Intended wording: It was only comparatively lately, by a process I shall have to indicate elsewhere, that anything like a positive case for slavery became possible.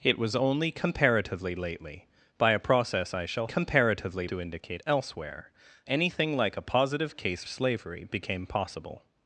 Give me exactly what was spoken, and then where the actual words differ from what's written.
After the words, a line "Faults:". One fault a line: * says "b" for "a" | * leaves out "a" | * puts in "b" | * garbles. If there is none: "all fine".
It was only comparatively lately, by a process I shall comparatively to indicate elsewhere, anything like a positive case slavery became possible.
Faults:
* says "comparatively" for "have"
* leaves out "that"
* leaves out "for"